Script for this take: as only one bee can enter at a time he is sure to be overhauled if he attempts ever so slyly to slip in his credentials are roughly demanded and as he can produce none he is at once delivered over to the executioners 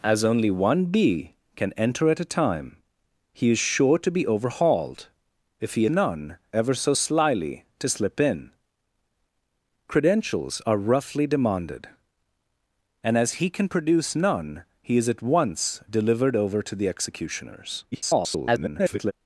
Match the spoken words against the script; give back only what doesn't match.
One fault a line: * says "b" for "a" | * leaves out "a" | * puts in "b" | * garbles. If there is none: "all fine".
* says "none" for "attempts"
* leaves out "his"
* garbles